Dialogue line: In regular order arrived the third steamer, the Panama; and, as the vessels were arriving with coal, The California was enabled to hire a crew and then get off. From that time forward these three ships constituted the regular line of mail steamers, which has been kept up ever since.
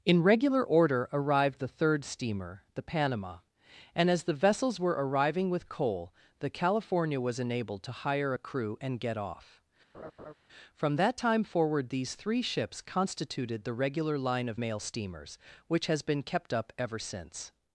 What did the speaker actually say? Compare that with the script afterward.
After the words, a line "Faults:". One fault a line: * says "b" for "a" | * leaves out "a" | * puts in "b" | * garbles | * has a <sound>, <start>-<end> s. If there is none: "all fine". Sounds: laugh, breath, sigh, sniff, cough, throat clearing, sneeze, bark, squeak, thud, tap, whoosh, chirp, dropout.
In regular order arrived the third steamer, the Panama; and, as the vessels were arriving with coal, The California was enabled to hire a crew and get off. From that time forward these three ships constituted the regular line of mail steamers, which has been kept up ever since.
Faults:
* leaves out "then"
* has a laugh, 9.9-10.3 s